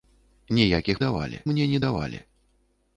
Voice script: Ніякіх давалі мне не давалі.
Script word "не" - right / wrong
right